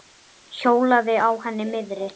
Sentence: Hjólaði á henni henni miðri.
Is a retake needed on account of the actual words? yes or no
yes